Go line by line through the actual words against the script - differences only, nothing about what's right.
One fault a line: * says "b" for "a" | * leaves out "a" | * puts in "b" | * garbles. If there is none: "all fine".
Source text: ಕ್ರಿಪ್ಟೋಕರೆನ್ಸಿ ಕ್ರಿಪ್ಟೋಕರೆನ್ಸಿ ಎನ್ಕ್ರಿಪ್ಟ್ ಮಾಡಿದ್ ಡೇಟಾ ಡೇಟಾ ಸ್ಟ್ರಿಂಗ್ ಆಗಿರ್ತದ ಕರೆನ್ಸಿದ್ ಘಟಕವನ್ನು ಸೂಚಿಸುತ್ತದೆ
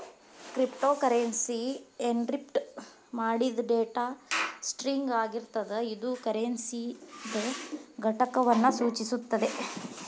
* leaves out "ಕ್ರಿಪ್ಟೋಕರೆನ್ಸಿ"
* leaves out "ಡೇಟಾ"
* puts in "ಇದು"